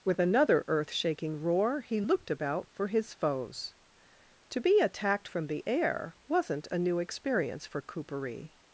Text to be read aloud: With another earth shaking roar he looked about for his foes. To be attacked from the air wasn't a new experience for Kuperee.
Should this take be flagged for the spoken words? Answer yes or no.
no